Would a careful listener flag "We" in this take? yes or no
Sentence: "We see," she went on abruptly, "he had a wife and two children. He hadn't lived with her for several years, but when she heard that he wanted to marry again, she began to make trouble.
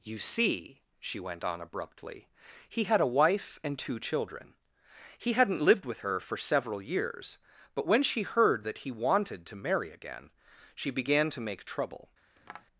yes